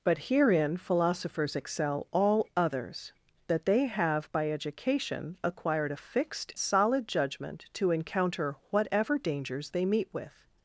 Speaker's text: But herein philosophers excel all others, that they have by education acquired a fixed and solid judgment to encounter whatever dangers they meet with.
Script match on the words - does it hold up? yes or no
no